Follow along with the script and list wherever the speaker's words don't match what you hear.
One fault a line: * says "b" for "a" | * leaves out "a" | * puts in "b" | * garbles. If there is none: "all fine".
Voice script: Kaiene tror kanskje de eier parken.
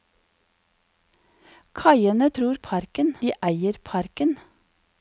* says "parken" for "kanskje"